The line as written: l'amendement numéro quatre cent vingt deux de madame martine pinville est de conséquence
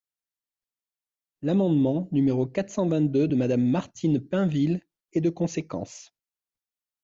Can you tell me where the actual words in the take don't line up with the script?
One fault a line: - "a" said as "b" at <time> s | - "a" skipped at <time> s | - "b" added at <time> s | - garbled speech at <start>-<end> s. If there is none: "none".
none